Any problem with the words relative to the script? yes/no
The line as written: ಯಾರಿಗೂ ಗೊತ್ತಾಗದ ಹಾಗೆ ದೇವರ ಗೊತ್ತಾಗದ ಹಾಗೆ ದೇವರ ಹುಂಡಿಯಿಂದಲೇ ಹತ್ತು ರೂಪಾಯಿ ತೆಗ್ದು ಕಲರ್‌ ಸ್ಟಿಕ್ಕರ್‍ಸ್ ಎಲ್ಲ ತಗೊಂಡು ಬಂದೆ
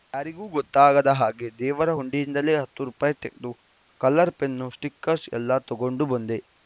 yes